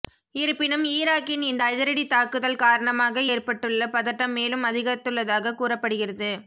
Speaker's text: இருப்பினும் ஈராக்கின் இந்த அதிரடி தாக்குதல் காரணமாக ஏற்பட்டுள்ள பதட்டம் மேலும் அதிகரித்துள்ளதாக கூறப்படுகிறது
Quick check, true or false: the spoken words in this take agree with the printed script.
true